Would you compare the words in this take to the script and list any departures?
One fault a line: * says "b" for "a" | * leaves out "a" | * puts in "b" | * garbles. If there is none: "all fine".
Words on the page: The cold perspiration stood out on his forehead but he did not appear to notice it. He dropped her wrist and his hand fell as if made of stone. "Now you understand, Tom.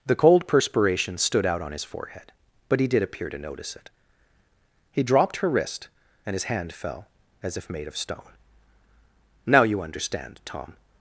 * leaves out "not"